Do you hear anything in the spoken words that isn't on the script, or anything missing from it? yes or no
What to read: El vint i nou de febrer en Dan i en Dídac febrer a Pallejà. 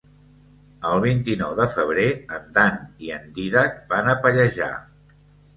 yes